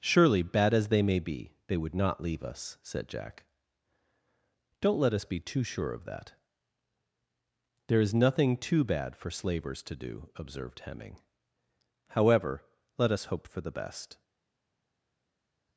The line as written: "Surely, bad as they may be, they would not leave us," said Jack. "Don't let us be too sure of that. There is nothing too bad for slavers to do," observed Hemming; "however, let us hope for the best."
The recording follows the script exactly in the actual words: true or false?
true